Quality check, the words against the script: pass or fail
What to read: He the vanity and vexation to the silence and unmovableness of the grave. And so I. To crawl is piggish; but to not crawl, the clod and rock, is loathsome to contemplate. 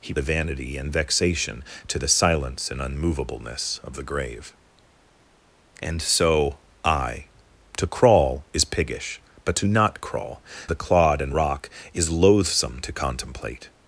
pass